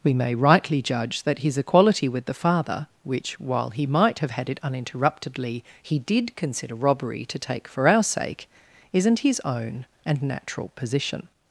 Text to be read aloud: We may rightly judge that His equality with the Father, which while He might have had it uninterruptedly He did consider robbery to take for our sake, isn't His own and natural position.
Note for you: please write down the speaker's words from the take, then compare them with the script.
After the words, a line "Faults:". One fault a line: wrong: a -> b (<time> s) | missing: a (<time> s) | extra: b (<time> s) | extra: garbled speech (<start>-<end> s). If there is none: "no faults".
We may rightly judge that His equality with the Father, which while He might have had it uninterruptedly He did consider robbery to take for our sake, isn't His own and natural position.
Faults:
no faults